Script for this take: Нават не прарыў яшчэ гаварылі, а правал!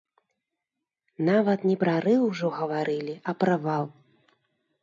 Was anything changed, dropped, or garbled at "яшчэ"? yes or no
yes